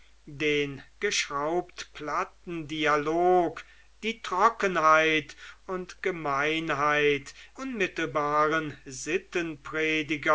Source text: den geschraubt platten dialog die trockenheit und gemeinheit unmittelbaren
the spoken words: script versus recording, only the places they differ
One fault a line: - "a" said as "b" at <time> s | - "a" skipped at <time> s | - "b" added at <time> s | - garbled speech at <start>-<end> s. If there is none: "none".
none